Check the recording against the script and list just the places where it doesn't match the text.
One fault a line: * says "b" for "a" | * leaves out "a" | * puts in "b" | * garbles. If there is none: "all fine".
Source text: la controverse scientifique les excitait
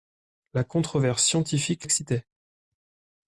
* leaves out "les"